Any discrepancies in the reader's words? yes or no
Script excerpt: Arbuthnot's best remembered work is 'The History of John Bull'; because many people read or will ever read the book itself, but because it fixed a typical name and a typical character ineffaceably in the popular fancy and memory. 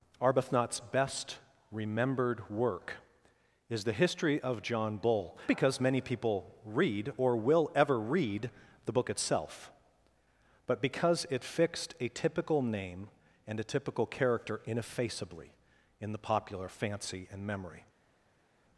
no